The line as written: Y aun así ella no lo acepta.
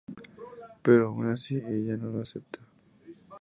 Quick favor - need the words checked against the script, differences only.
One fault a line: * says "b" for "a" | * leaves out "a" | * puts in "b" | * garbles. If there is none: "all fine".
* says "Pero" for "Y"